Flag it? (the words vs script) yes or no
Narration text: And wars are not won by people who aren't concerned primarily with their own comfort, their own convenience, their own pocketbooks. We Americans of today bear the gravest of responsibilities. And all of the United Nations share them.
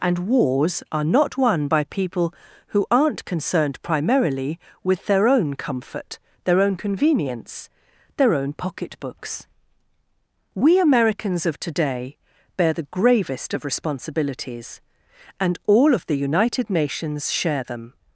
no